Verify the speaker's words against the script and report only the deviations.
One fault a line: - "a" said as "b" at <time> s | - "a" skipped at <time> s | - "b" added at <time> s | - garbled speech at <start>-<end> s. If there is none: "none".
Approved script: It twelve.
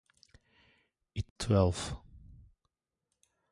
none